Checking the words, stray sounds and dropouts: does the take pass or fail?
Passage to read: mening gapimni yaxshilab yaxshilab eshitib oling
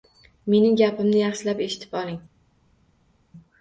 fail